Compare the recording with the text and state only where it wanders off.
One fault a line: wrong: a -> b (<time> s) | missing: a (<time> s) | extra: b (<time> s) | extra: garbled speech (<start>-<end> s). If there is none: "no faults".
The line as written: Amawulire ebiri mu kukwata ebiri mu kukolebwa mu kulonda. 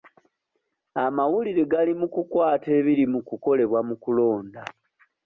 wrong: ebiri -> gali (1.7 s)